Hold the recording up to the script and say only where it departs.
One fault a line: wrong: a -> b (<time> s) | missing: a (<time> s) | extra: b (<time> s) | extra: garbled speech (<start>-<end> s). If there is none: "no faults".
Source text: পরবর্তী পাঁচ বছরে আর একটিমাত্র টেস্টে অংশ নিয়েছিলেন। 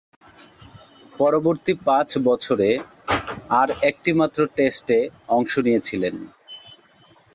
no faults